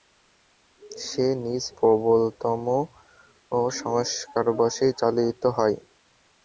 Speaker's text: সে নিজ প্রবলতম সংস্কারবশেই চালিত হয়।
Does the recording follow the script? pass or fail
pass